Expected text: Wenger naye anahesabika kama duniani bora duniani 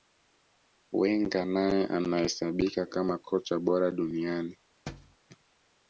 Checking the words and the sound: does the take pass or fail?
fail